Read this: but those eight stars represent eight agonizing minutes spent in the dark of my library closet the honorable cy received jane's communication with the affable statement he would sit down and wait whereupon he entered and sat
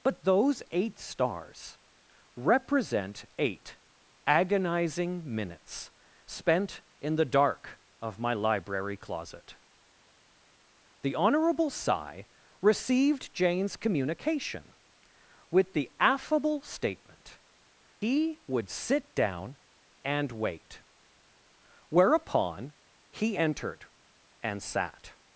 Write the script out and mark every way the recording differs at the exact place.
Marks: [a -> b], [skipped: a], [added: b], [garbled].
but those eight stars represent eight agonizing minutes spent in the dark of my library closet the honorable cy received jane's communication with the affable statement he would sit down and wait whereupon he entered and sat